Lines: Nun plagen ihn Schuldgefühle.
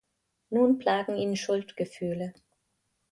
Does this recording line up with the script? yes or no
yes